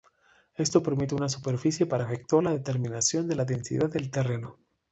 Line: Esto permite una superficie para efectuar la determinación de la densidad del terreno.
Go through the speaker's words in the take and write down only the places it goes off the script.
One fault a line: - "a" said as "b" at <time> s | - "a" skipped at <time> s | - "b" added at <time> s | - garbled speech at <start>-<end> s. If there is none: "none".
none